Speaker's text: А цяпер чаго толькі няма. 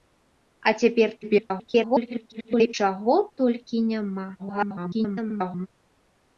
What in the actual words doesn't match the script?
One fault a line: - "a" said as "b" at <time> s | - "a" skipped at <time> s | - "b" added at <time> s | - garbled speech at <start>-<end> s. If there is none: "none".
- garbled speech at 1.2-2.7 s
- garbled speech at 4.4-5.7 s